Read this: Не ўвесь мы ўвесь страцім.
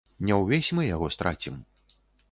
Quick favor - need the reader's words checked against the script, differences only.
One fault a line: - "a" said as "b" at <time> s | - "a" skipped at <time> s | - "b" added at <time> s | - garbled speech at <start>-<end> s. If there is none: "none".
- "ўвесь" said as "яго" at 0.9 s